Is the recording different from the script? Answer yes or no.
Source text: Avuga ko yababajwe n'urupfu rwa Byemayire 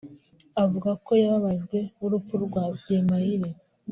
no